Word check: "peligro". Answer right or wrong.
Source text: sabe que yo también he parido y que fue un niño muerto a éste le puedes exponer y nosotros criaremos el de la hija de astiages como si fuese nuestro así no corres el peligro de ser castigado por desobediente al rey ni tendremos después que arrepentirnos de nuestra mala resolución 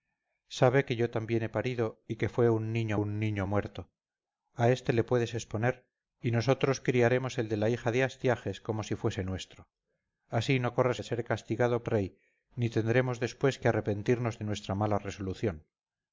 wrong